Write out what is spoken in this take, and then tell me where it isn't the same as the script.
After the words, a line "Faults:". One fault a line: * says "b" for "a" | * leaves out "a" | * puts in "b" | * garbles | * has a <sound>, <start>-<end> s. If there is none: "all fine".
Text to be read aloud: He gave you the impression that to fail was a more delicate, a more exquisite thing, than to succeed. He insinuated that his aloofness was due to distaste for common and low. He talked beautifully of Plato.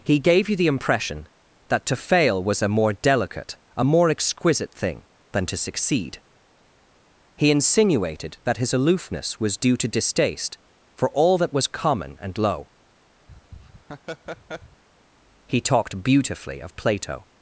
He gave you the impression that to fail was a more delicate, a more exquisite thing, than to succeed. He insinuated that his aloofness was due to distaste for all that was common and low. He talked beautifully of Plato.
Faults:
* puts in "all that was"
* has a laugh, 13.3-14.8 s